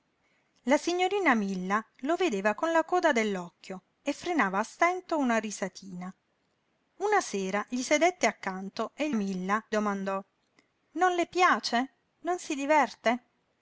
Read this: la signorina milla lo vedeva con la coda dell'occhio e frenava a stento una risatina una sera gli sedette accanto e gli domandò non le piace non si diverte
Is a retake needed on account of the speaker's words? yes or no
yes